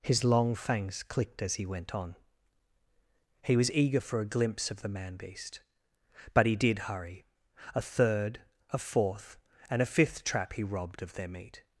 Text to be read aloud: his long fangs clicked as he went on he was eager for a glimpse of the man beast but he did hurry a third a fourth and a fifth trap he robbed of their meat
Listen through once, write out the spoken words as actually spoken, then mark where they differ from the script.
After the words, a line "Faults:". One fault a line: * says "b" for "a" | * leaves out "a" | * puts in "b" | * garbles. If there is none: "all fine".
his long fangs clicked as he went on he was eager for a glimpse of the man beast but he did hurry a third a fourth and a fifth trap he robbed of their meat
Faults:
all fine